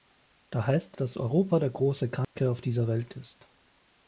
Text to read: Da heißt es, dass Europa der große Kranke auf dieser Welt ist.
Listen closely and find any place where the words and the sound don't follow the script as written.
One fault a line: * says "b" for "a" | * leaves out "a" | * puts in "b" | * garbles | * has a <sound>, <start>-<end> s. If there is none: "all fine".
* leaves out "es"
* has a dropout, 2.2-2.4 s